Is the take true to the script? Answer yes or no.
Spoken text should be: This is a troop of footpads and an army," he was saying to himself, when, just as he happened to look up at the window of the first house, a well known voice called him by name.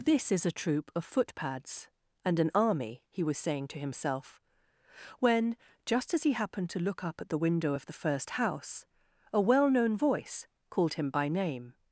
yes